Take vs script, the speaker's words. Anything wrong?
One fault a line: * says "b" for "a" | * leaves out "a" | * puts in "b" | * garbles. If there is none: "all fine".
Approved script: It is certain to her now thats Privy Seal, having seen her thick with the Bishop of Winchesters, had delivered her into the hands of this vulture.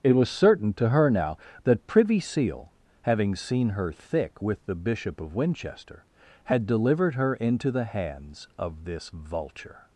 * says "was" for "is"
* says "that" for "thats"
* says "Winchester" for "Winchesters"